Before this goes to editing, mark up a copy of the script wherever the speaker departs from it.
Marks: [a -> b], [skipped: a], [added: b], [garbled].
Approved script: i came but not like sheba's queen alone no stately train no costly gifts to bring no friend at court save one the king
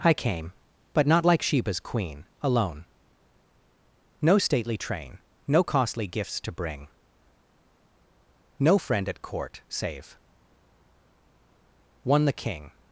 i came but not like sheba's queen alone no stately train no costly gifts to bring no friend at court save one the king